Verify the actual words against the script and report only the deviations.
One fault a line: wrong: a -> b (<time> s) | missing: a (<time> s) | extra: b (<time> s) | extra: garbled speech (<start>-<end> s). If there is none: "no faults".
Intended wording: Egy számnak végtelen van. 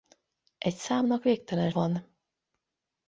no faults